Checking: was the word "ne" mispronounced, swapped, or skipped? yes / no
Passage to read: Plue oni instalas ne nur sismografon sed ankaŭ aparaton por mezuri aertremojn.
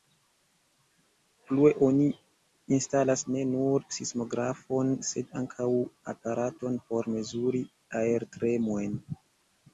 no